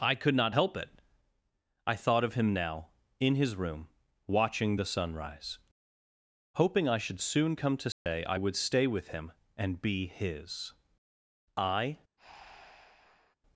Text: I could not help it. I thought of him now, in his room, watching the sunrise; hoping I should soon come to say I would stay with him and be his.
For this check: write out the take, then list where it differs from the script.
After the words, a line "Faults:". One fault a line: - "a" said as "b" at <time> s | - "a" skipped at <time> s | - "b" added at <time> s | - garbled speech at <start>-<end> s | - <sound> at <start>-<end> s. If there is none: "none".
I could not help it. I thought of him now, in his room, watching the sunrise; hoping I should soon come to say I would stay with him and be his. I
Faults:
- dropout at 7.9-8.1 s
- "I" added at 11.6 s
- breath at 12.2-13.4 s